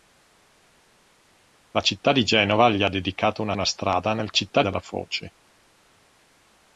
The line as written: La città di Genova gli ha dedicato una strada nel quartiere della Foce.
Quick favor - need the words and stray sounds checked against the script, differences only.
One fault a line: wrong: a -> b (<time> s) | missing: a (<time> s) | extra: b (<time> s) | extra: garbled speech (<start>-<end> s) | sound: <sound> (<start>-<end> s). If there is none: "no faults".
extra: una (3.5 s)
wrong: quartiere -> città (4.3 s)